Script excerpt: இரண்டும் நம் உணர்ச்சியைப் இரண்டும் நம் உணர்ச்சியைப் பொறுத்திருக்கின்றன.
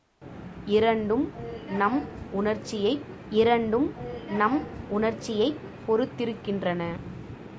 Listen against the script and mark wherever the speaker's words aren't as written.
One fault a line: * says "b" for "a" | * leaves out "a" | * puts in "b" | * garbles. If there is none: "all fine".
all fine